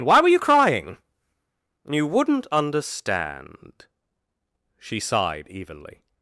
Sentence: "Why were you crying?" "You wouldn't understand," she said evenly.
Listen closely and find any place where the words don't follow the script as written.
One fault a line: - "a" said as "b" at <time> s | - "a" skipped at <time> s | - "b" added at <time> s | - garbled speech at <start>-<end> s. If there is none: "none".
- "said" said as "sighed" at 5.0 s